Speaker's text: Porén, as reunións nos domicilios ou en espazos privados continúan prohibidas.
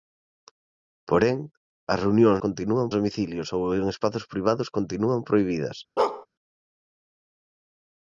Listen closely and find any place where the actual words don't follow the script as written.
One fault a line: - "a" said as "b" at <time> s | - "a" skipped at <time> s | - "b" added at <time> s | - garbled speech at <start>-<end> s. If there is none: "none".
- "nos" said as "continúan" at 2.4 s